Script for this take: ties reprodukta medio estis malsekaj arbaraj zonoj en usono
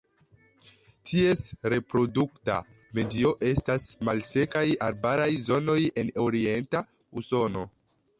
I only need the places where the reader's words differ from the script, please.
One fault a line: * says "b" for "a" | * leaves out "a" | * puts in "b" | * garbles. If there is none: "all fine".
* says "estas" for "estis"
* puts in "orienta"